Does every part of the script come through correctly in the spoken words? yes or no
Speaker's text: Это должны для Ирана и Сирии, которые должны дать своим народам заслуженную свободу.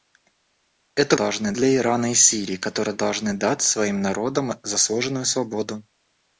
yes